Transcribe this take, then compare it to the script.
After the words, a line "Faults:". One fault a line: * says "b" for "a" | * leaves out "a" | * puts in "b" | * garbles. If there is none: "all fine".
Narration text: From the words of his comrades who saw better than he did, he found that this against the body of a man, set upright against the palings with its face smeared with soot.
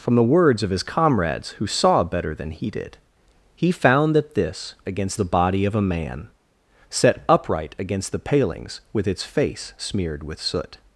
From the words of his comrades who saw better than he did, he found that this against the body of a man, set upright against the palings with its face smeared with soot.
Faults:
all fine